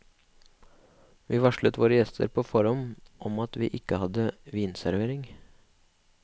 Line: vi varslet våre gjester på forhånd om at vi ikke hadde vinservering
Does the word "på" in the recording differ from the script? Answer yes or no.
no